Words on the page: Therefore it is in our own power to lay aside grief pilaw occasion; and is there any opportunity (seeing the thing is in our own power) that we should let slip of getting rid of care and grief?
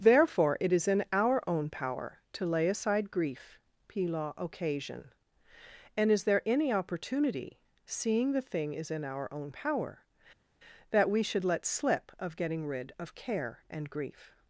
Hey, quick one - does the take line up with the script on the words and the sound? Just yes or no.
yes